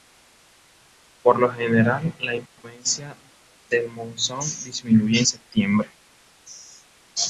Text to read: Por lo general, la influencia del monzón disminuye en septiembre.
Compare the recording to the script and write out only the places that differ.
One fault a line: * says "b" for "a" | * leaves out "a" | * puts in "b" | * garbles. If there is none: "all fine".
all fine